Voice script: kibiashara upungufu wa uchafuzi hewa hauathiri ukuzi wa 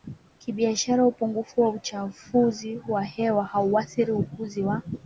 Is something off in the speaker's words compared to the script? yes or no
yes